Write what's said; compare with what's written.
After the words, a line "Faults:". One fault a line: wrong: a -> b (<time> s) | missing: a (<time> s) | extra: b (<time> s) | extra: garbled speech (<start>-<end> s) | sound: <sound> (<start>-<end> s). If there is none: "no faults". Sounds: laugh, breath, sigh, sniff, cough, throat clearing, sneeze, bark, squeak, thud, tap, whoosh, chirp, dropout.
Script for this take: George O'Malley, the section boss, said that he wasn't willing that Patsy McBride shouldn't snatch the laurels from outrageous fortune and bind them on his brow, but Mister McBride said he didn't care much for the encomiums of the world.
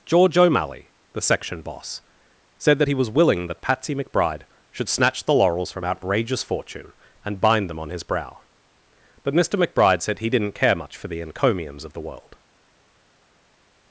George O'Malley, the section boss, said that he was willing that Patsy McBride should snatch the laurels from outrageous fortune and bind them on his brow, but Mister McBride said he didn't care much for the encomiums of the world.
Faults:
wrong: wasn't -> was (2.9 s)
wrong: shouldn't -> should (4.7 s)